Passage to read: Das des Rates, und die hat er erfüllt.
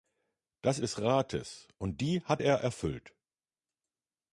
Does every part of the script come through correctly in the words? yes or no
yes